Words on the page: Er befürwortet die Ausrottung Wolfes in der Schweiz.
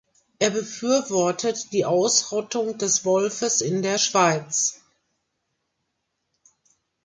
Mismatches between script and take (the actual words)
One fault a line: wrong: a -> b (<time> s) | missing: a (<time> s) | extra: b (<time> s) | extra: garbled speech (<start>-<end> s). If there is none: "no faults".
extra: des (2.8 s)